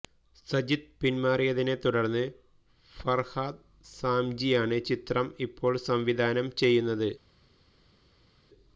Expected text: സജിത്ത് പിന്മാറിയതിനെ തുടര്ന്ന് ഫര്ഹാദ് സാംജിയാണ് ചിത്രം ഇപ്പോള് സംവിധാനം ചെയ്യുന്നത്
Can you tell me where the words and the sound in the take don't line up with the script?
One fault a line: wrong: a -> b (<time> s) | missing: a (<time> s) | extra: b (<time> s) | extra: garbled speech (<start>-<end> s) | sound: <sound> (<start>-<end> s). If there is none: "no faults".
no faults